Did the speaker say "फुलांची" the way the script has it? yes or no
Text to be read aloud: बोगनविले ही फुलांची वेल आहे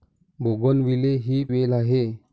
no